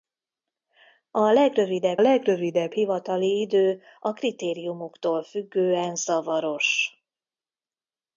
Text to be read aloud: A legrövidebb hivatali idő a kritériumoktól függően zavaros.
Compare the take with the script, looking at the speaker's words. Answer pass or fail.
fail